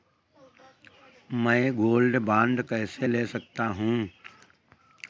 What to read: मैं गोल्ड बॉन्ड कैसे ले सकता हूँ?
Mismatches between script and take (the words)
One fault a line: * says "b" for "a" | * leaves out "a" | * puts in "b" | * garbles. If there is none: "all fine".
all fine